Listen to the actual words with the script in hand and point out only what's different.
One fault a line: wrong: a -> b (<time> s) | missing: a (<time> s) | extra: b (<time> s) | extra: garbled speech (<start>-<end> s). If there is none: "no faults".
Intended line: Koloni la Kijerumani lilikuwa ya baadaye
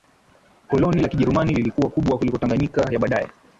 extra: kubwa kuliko Tanganyika (1.9 s)